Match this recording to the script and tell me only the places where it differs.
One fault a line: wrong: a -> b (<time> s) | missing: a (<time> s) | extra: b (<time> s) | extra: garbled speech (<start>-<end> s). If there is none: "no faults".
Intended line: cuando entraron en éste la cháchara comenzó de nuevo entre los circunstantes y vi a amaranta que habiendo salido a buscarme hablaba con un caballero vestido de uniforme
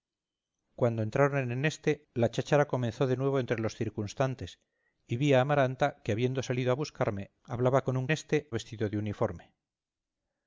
wrong: caballero -> éste (8.1 s)